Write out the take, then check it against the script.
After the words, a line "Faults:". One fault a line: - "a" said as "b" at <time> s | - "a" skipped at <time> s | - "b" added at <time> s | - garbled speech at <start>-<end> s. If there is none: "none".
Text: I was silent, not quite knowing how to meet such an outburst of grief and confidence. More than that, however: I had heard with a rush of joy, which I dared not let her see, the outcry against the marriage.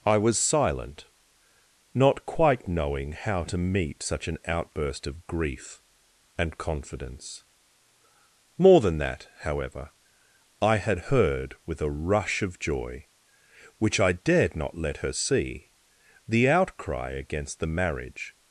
I was silent, not quite knowing how to meet such an outburst of grief and confidence. More than that, however: I had heard with a rush of joy, which I dared not let her see, the outcry against the marriage.
Faults:
none